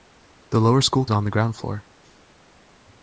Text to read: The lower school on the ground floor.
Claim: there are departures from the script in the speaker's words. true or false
false